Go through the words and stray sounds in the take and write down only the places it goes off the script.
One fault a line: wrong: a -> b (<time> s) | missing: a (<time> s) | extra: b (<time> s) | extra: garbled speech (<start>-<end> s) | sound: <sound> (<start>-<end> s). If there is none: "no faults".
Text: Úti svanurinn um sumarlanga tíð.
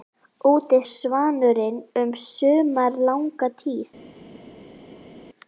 no faults